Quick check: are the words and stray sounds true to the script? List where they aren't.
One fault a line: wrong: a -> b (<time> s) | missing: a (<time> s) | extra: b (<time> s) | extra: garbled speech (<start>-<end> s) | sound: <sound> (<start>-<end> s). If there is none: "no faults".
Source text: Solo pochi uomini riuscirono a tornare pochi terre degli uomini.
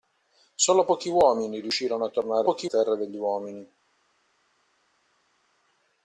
no faults